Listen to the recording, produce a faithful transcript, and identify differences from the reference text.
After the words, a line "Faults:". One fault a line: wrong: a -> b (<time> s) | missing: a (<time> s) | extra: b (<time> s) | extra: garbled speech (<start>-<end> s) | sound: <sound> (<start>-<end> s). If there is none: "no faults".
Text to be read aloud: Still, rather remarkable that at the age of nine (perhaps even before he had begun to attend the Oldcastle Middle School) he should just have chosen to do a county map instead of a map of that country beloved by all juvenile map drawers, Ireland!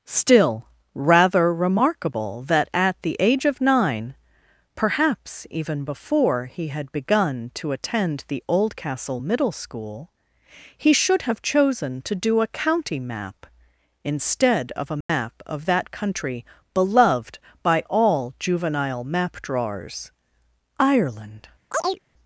Still, rather remarkable that at the age of nine (perhaps even before he had begun to attend the Oldcastle Middle School) he should have chosen to do a county map instead of a map of that country beloved by all juvenile map drawers, Ireland!
Faults:
missing: just (11.2 s)
sound: dropout (15.0-15.1 s)
sound: chirp (21.7-22.0 s)